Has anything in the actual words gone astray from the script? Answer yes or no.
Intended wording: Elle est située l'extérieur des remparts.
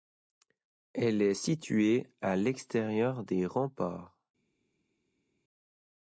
yes